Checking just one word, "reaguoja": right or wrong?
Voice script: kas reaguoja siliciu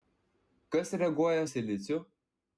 right